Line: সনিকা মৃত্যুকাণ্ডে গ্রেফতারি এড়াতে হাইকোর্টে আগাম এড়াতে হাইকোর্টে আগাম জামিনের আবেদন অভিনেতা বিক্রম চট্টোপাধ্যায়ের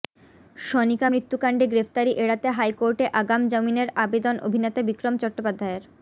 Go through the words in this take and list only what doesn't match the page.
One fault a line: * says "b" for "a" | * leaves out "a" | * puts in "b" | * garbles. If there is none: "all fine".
* leaves out "এড়াতে হাইকোর্টে আগাম"